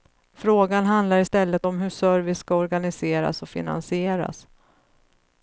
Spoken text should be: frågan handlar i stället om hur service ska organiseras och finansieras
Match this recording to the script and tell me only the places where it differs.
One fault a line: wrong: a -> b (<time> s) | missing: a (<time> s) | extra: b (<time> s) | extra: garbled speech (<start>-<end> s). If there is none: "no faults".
no faults